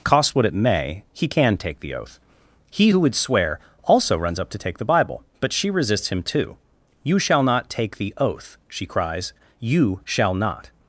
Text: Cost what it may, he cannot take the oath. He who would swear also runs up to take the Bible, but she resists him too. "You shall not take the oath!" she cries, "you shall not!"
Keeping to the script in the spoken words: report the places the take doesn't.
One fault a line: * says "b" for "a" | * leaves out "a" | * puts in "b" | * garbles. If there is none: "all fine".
* says "can" for "cannot"